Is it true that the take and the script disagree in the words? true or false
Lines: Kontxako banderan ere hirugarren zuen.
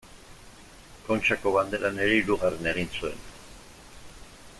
true